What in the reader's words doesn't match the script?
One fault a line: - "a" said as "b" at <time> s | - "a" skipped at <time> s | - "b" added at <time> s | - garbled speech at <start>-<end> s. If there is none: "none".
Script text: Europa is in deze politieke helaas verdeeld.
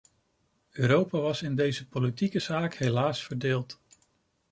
- "is" said as "was" at 1.2 s
- "zaak" added at 2.4 s